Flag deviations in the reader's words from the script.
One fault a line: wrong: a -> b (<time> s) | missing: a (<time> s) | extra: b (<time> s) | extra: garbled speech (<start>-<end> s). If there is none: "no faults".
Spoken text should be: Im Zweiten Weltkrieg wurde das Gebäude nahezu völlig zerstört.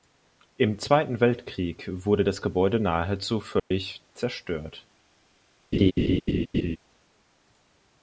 no faults